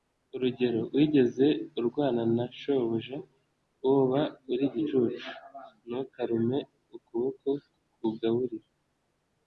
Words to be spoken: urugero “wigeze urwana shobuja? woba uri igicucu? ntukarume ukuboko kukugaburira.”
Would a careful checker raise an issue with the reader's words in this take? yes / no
yes